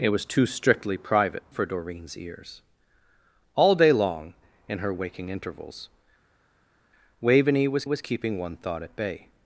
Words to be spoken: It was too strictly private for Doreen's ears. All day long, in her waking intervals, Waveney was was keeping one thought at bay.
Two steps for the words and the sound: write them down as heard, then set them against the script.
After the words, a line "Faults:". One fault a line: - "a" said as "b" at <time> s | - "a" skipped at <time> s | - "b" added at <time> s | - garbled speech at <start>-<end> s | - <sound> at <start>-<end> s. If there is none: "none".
It was too strictly private for Doreen's ears. All day long, in her waking intervals, Waveney was was keeping one thought at bay.
Faults:
none